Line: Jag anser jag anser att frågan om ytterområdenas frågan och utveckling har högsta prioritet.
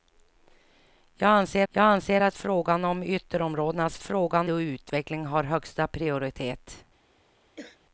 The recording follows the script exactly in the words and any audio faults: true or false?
false